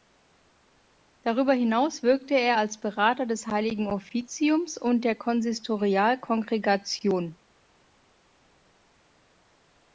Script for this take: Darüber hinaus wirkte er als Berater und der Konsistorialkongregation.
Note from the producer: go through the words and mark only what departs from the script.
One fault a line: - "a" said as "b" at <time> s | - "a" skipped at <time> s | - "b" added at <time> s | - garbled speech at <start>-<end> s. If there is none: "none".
- "des Heiligen Offiziums" added at 3.3 s